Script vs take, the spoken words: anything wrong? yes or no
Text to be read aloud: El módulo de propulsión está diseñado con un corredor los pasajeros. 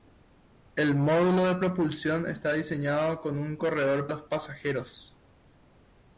no